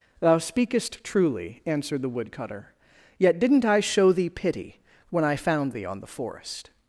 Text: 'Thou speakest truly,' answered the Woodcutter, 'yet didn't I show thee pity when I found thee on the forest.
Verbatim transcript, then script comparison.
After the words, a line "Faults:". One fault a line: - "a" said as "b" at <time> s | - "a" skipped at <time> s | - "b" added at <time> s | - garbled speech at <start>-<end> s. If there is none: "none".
'Thou speakest truly,' answered the Woodcutter, 'yet didn't I show thee pity when I found thee on the forest.
Faults:
none